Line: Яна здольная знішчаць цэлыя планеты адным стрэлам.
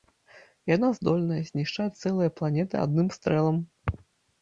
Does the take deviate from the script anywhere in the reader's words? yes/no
no